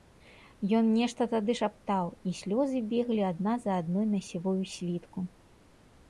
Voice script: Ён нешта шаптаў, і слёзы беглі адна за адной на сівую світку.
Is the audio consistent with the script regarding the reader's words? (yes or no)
no